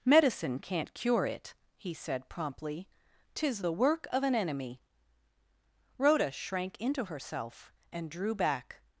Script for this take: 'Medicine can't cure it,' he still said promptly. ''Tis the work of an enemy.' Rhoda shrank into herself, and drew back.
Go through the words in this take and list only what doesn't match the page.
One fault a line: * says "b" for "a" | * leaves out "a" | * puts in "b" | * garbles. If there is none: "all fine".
* leaves out "still"